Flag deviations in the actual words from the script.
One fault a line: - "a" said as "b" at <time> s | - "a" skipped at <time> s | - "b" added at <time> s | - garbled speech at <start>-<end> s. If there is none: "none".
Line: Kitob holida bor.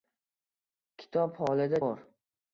none